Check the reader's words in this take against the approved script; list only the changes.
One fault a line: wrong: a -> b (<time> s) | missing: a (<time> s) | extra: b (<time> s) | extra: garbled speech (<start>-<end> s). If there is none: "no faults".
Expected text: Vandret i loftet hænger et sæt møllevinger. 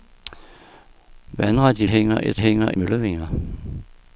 missing: loftet (1.9 s)
wrong: sæt -> hænger (2.4 s)